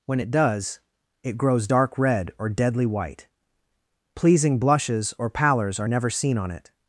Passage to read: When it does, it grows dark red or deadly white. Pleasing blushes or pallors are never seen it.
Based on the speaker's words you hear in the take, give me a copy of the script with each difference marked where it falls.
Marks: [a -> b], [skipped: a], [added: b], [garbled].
When it does, it grows dark red or deadly white. Pleasing blushes or pallors are never seen [added: on] it.